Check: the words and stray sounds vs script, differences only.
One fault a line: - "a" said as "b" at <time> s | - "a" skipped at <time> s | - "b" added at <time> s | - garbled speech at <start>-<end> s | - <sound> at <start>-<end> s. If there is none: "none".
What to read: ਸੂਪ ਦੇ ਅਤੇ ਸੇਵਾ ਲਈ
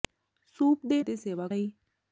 none